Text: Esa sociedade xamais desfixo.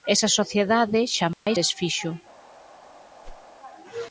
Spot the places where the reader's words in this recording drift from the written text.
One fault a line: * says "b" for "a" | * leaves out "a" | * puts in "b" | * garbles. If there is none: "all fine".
all fine